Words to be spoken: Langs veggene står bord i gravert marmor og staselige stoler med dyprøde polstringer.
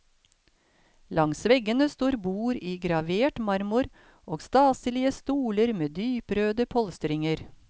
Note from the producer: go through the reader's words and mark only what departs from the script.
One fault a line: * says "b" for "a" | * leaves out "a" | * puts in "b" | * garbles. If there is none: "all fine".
all fine